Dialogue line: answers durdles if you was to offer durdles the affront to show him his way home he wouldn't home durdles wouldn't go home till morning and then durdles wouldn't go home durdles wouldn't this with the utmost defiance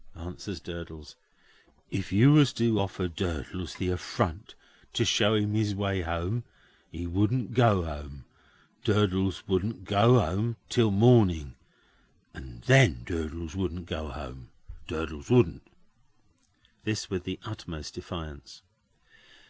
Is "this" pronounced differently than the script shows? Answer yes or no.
no